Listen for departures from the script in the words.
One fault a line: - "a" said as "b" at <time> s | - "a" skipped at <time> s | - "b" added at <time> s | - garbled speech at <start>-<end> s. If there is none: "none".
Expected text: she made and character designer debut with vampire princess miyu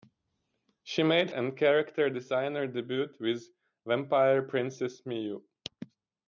none